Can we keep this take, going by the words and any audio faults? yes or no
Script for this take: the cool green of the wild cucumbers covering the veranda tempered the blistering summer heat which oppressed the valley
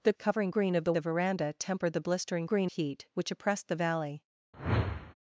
no